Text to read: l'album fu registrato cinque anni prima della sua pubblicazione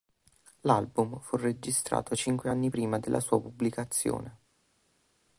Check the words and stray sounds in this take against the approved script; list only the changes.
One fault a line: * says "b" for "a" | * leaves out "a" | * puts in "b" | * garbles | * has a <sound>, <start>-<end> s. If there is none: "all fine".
all fine